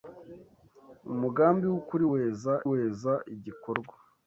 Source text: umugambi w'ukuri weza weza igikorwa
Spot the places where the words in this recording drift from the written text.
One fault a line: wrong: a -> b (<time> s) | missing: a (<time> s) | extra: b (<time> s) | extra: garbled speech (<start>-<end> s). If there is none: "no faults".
no faults